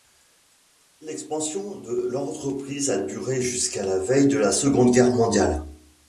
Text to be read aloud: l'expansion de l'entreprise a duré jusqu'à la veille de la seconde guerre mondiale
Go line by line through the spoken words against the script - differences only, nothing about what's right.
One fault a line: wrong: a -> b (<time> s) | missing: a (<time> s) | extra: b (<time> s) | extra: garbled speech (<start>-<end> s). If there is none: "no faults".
no faults